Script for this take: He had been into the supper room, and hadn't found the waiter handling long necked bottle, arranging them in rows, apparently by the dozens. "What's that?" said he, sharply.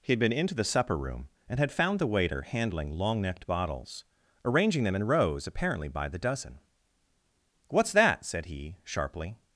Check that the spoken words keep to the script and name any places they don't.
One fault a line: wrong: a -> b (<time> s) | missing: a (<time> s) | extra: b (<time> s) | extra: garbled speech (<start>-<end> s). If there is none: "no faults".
wrong: hadn't -> had (1.6 s)
wrong: bottle -> bottles (3.5 s)
wrong: dozens -> dozen (6.2 s)